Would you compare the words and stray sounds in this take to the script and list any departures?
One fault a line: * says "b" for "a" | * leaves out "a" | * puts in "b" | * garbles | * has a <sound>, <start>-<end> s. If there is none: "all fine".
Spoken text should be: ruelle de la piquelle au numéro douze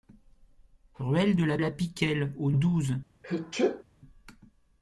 * puts in "la"
* leaves out "numéro"
* has a sneeze, 3.2-3.8 s